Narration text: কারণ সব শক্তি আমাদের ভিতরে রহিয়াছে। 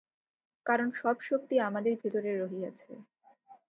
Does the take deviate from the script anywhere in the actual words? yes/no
no